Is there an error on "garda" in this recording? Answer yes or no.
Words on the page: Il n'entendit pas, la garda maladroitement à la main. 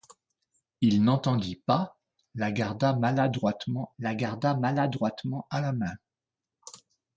no